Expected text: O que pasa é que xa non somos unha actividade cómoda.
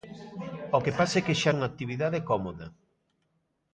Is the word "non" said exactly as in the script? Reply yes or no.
no